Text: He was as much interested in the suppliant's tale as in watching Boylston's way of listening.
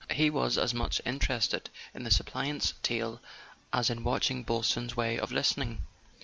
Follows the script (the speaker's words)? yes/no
yes